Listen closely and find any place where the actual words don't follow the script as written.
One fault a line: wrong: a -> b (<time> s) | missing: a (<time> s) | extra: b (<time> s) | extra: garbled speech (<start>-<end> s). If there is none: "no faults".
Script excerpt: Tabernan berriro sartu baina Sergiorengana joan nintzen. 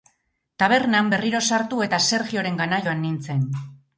wrong: baina -> eta (1.9 s)